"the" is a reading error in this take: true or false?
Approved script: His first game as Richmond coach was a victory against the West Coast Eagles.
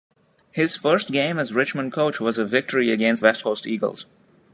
true